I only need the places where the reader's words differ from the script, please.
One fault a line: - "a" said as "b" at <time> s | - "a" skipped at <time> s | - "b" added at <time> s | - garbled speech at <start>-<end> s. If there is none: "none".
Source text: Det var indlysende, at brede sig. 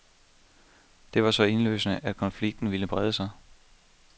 - "så" added at 1.3 s
- "konflikten ville" added at 2.2 s